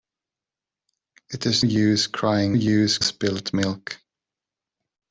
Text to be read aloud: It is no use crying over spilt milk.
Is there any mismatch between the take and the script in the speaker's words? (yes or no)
yes